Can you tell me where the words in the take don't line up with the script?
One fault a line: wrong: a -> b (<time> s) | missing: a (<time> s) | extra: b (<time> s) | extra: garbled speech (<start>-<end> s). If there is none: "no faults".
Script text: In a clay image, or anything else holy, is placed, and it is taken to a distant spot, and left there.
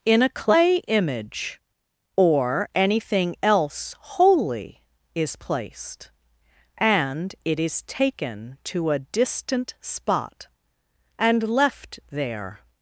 no faults